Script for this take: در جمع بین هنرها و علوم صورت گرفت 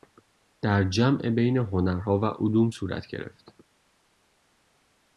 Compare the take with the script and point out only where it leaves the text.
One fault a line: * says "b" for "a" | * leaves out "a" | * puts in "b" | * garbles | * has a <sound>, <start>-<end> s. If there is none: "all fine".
all fine